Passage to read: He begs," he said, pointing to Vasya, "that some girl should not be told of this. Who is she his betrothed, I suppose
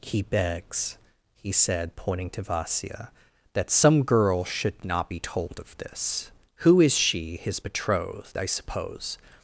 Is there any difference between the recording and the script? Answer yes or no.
no